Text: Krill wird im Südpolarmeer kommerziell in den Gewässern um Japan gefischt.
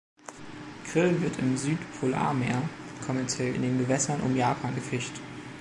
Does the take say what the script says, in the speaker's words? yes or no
yes